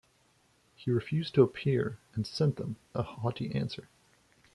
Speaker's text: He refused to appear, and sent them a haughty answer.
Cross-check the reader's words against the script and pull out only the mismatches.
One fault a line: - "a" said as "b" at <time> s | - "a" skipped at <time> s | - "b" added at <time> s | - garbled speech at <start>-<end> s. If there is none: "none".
none